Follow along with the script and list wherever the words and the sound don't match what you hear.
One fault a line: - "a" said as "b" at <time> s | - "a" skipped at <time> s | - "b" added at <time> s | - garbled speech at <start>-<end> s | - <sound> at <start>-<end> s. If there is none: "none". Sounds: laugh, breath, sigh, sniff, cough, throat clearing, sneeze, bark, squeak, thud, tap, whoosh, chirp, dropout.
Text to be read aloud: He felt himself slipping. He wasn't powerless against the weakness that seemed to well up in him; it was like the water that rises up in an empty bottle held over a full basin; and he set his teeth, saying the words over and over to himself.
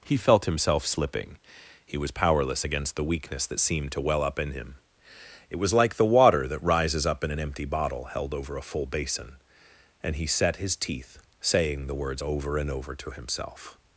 - "wasn't" said as "was" at 2.0 s